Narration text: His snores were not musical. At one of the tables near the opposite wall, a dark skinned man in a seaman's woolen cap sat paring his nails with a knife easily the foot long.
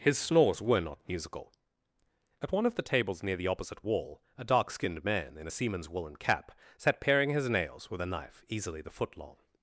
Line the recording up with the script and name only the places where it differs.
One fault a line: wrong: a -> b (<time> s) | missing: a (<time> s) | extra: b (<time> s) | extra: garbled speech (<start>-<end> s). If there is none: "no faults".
no faults